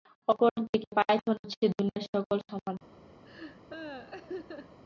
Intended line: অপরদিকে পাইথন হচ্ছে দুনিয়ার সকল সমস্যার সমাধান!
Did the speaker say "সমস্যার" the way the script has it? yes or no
no